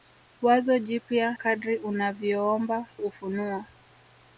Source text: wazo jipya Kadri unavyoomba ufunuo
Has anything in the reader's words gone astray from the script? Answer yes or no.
no